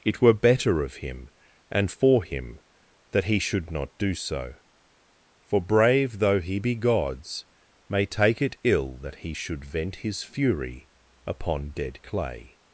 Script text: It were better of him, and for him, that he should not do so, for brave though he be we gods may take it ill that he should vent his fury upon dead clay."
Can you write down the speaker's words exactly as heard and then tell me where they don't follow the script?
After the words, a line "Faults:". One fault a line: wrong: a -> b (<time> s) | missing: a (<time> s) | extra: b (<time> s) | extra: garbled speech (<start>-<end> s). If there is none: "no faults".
It were better of him, and for him, that he should not do so, for brave though he be gods may take it ill that he should vent his fury upon dead clay."
Faults:
missing: we (6.8 s)